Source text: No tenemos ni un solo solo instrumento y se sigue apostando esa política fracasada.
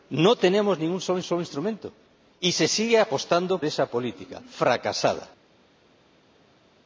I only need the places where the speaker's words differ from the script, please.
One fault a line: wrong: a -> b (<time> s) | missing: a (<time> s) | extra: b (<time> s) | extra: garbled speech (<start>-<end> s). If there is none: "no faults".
no faults